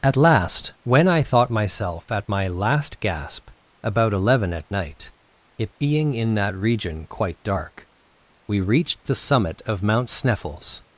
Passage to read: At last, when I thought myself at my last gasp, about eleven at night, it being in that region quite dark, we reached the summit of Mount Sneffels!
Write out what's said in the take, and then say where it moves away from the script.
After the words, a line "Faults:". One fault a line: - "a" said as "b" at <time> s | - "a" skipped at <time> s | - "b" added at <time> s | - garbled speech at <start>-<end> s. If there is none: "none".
At last, when I thought myself at my last gasp, about eleven at night, it being in that region quite dark, we reached the summit of Mount Sneffels!
Faults:
none